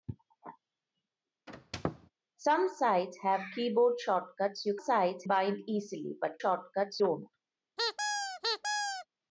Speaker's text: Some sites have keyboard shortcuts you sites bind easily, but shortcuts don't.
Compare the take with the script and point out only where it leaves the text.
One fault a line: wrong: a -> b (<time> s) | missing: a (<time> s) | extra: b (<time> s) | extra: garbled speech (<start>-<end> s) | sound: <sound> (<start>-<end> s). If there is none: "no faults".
sound: squeak (1.5-2.1 s)
sound: squeak (7.8-9.1 s)